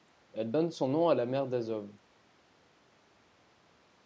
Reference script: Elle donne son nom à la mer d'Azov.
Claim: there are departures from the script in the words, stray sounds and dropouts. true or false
false